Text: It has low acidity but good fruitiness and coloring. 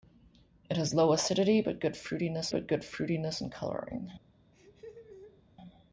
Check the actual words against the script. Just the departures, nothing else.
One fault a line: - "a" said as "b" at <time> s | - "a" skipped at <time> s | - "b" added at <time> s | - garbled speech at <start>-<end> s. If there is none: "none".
- "but good fruitiness" added at 2.5 s